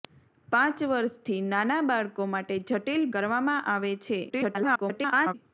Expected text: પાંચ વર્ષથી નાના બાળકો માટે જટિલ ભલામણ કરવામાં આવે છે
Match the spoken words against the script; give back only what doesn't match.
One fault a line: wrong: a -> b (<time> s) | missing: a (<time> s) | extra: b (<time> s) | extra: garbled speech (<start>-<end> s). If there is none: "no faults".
missing: ભલામણ (3.1 s)
extra: garbled speech (4.3-5.3 s)